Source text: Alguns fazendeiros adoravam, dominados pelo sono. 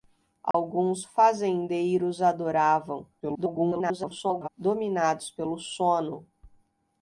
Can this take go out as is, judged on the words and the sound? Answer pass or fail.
fail